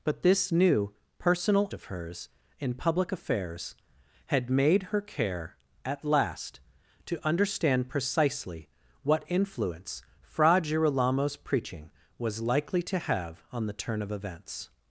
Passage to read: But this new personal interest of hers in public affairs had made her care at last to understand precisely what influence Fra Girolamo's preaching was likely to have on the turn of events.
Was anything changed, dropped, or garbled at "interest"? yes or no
yes